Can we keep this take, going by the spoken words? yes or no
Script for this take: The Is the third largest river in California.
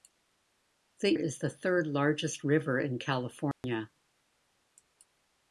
yes